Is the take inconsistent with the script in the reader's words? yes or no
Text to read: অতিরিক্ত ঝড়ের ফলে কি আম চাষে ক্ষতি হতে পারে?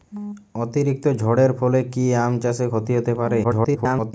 yes